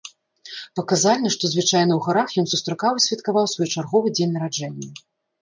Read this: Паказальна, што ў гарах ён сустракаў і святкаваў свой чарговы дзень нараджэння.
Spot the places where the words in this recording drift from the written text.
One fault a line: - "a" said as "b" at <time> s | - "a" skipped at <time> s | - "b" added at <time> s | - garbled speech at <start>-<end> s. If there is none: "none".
- "звычайна" added at 1.5 s